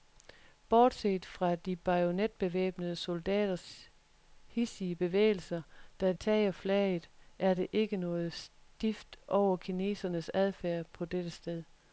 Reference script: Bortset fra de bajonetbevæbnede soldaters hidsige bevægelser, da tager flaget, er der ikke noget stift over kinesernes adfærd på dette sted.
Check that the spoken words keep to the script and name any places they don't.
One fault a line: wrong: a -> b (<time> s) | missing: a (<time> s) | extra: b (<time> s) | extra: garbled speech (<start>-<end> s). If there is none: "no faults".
no faults